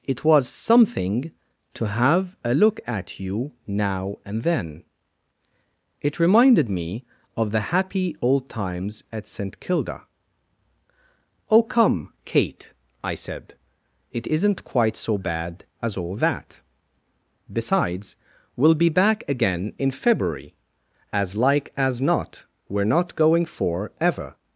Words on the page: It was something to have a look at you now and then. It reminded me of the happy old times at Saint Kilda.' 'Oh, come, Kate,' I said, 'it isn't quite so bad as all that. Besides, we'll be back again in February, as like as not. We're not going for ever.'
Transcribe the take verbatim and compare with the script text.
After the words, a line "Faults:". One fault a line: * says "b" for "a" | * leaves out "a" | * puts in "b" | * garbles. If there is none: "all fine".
It was something to have a look at you now and then. It reminded me of the happy old times at Saint Kilda.' 'Oh, come, Kate,' I said, 'it isn't quite so bad as all that. Besides, we'll be back again in February, as like as not. We're not going for ever.'
Faults:
all fine